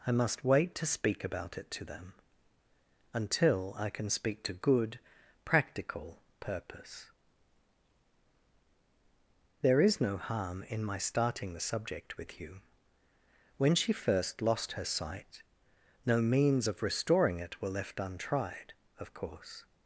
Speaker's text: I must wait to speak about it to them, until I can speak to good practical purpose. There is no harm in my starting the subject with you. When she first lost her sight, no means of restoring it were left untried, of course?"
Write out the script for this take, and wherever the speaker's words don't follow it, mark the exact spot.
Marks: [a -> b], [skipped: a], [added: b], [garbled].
I must wait to speak about it to them, until I can speak to good practical purpose. There is no harm in my starting the subject with you. When she first lost her sight, no means of restoring it were left untried, of course?"